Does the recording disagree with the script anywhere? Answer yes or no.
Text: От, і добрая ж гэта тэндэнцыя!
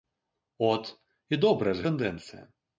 yes